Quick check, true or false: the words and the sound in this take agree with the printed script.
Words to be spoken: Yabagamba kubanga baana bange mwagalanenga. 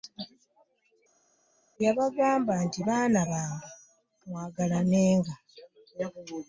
false